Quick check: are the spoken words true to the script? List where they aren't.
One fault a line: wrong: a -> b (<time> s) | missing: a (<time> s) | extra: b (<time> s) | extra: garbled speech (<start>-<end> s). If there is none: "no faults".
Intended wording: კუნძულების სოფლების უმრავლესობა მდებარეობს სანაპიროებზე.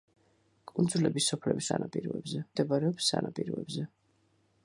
wrong: უმრავლესობა -> სანაპიროებზე (1.7 s)